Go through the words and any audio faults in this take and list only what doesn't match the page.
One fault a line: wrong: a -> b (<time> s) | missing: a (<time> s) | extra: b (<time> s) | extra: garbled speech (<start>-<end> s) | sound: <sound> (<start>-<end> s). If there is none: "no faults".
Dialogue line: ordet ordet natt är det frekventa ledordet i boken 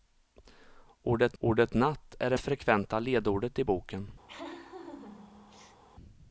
sound: laugh (4.3-5.8 s)